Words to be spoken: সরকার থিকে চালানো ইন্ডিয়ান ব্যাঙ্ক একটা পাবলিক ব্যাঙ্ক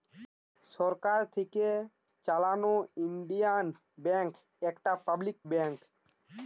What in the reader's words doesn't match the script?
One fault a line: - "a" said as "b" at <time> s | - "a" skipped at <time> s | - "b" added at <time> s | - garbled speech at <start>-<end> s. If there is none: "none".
none